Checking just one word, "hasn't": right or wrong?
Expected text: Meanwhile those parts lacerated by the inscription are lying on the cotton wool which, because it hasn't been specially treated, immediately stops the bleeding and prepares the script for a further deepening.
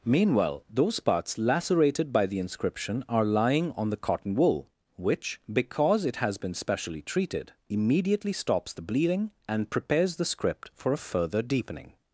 wrong